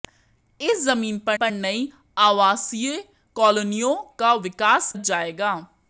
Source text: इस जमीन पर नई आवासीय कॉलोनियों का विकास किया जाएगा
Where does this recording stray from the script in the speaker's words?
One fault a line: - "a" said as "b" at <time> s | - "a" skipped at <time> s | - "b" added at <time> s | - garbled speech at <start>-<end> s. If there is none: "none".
- "पर" added at 1.3 s
- "किया" skipped at 4.9 s